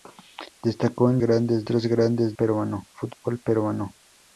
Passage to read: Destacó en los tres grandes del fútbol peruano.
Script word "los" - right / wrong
wrong